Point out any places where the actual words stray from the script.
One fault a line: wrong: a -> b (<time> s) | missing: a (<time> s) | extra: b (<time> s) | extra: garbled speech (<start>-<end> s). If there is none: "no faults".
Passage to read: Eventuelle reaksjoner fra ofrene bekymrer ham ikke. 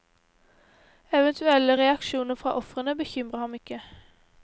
no faults